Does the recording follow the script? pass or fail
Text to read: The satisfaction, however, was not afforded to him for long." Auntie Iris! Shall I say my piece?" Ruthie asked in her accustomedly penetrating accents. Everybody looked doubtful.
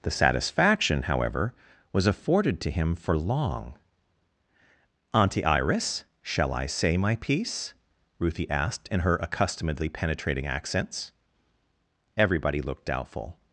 fail